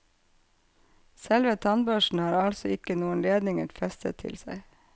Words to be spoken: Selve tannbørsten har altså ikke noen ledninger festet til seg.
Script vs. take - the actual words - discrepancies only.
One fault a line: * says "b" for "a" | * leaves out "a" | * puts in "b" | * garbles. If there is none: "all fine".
all fine